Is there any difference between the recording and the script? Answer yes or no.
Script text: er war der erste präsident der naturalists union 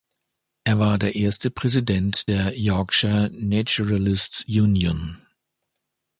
yes